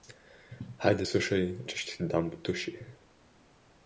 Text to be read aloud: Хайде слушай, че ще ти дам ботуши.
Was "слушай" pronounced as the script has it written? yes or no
yes